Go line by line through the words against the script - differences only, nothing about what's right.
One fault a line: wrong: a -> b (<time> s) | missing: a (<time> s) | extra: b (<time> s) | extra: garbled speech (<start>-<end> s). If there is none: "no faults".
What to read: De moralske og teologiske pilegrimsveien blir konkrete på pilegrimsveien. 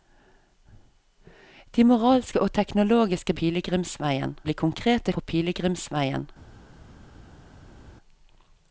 no faults